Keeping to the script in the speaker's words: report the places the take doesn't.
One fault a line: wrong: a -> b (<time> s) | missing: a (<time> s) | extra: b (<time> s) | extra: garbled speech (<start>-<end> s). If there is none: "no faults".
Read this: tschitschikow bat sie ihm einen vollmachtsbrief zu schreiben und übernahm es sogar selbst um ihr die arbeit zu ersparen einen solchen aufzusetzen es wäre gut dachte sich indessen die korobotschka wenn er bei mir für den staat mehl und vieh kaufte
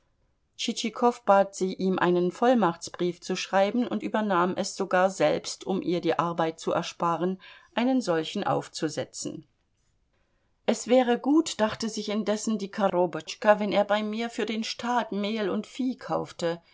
no faults